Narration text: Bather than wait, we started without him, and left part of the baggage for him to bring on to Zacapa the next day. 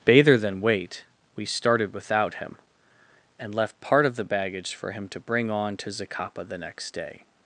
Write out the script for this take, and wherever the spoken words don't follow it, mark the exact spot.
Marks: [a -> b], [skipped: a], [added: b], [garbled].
Bather than wait, we started without him, and left part of the baggage for him to bring on to Zacapa the next day.